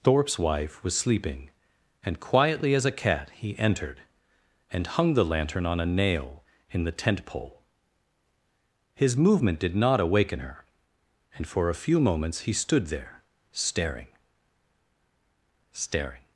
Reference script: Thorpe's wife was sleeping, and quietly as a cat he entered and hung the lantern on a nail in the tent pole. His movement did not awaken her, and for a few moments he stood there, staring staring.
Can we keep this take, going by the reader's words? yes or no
yes